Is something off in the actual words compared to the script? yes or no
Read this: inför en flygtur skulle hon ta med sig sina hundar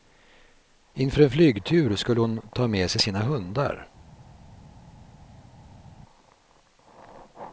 no